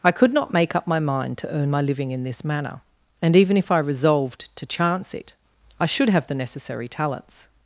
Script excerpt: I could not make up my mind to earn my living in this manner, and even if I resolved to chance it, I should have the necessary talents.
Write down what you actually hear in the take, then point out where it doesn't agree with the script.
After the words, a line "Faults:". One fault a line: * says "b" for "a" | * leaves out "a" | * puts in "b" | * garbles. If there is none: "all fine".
I could not make up my mind to earn my living in this manner, and even if I resolved to chance it, I should have the necessary talents.
Faults:
all fine